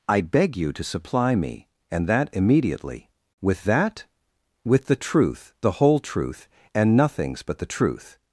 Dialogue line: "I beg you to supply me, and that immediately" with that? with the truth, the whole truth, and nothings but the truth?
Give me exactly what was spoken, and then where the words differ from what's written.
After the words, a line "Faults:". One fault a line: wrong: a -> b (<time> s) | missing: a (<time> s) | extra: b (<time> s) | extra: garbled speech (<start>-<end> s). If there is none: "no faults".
"I beg you to supply me, and that immediately" with that? with the truth, the whole truth, and nothings but the truth?
Faults:
no faults